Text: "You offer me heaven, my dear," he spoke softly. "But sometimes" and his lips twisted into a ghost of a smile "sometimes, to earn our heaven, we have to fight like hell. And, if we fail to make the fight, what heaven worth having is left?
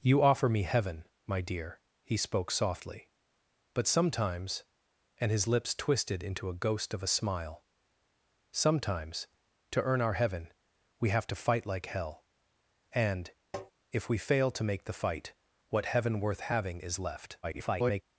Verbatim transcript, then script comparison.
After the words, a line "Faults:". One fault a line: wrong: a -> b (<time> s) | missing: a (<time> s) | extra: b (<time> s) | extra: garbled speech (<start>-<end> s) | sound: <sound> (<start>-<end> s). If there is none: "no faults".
"You offer me heaven, my dear," he spoke softly. "But sometimes" and his lips twisted into a ghost of a smile "sometimes, to earn our heaven, we have to fight like hell. And, if we fail to make the fight, what heaven worth having is left? [garbled]
Faults:
sound: tap (13.5-13.7 s)
extra: garbled speech (17.4-18.0 s)